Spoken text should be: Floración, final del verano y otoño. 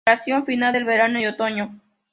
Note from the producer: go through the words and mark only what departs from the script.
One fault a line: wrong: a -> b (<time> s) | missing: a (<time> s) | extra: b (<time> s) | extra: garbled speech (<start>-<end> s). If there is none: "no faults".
no faults